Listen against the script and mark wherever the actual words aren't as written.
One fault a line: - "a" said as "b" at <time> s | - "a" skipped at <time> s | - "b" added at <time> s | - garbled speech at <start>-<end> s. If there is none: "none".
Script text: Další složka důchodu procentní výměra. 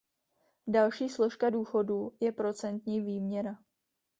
- "je" added at 2.2 s